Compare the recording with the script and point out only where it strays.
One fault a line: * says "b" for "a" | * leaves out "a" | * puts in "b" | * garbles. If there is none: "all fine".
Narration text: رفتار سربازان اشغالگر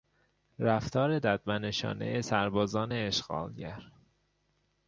* puts in "ددمنشانهی"